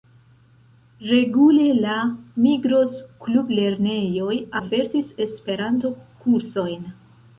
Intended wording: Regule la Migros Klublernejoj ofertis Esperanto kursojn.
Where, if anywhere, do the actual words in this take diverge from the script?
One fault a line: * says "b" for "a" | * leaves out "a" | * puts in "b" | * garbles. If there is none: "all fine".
all fine